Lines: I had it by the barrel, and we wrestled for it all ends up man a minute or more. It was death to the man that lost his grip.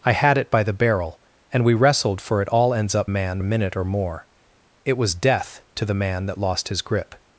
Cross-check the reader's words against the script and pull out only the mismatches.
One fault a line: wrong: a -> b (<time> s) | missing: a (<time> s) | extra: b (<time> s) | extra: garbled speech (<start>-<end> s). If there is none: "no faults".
no faults